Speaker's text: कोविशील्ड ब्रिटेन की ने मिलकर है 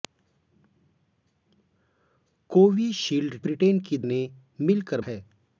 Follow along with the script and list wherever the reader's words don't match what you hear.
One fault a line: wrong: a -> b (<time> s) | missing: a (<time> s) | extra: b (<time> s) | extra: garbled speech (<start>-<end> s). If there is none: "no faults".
no faults